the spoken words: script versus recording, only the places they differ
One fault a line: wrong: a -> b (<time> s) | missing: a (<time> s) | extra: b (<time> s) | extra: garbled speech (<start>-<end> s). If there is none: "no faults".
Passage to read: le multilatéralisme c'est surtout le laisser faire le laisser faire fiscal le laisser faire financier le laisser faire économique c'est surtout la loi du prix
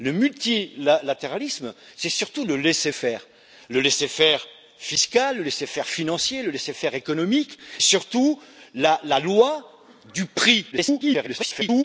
missing: c'est (7.6 s)
extra: garbled speech (10.7-11.8 s)